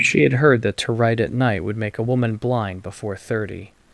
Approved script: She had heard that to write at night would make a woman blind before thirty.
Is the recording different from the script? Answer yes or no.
no